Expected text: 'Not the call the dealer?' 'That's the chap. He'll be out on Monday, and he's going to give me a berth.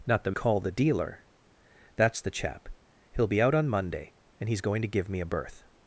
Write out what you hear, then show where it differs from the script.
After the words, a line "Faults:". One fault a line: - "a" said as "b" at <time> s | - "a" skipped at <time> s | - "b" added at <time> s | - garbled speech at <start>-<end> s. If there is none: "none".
'Not the call the dealer?' 'That's the chap. He'll be out on Monday, and he's going to give me a berth.
Faults:
none